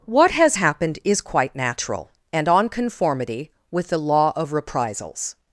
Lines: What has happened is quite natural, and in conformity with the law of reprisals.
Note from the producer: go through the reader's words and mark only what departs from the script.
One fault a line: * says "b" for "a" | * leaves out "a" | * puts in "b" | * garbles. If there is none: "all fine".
* says "on" for "in"